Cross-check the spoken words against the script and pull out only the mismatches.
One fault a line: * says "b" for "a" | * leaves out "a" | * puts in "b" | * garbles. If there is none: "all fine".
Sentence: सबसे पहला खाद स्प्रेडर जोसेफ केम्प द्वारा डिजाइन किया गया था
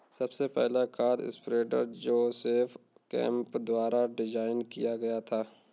all fine